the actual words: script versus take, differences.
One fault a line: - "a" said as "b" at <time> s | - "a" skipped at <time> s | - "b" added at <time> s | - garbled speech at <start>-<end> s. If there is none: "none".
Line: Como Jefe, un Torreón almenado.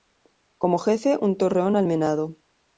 none